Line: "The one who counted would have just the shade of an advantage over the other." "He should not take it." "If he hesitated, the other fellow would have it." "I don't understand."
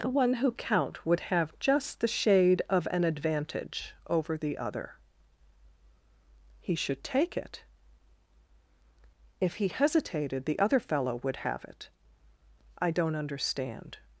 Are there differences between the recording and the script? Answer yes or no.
yes